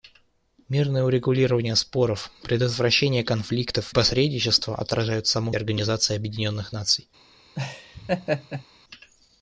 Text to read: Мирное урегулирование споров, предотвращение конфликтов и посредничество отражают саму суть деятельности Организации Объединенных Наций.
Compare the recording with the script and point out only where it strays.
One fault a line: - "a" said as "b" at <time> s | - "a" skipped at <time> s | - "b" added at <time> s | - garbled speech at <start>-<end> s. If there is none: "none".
- "и" skipped at 3.9 s
- "суть деятельности" skipped at 5.5 s